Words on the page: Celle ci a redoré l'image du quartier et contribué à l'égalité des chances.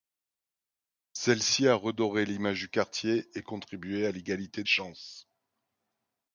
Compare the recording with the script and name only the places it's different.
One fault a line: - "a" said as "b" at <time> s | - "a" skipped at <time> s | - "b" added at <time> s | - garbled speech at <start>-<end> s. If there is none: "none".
- "des" skipped at 4.6 s